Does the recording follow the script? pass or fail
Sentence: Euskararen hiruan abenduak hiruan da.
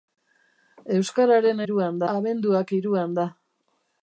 pass